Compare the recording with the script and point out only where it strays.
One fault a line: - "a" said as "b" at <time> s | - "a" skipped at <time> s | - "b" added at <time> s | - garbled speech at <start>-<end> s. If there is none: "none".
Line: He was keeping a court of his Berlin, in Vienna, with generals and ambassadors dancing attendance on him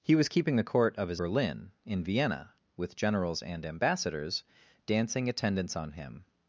none